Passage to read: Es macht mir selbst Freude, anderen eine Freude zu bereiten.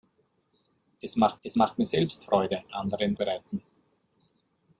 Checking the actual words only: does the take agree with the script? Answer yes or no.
no